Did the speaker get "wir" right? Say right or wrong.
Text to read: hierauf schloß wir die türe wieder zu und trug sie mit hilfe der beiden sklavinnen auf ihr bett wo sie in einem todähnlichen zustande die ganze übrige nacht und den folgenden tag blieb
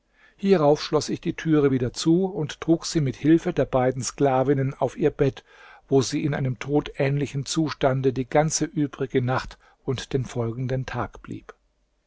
wrong